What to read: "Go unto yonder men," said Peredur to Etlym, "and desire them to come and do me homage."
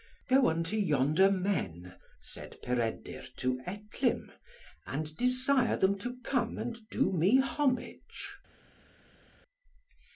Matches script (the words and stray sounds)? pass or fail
pass